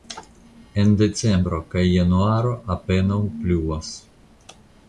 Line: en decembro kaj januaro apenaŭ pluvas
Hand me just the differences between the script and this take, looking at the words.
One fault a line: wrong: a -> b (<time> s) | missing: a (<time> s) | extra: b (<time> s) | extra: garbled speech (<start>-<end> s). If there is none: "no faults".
no faults